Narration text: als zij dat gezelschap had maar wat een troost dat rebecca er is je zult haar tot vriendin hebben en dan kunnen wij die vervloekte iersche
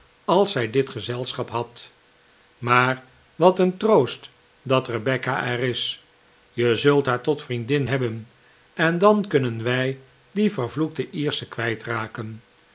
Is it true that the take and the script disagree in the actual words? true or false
true